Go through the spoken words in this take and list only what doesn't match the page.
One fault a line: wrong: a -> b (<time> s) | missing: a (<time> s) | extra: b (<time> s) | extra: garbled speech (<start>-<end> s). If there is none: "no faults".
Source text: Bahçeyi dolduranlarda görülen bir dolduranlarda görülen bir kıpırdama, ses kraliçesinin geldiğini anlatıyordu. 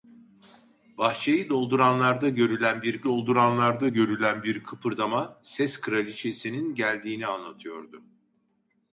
no faults